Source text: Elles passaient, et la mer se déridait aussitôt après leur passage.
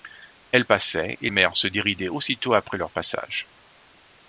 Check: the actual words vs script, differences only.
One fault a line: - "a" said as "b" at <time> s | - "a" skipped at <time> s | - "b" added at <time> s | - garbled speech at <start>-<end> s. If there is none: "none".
- "la" skipped at 1.3 s